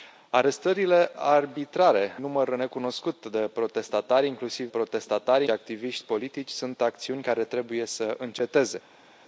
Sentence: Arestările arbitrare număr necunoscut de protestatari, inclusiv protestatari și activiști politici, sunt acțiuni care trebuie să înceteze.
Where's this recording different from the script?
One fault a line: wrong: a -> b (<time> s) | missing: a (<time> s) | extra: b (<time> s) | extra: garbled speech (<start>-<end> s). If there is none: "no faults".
no faults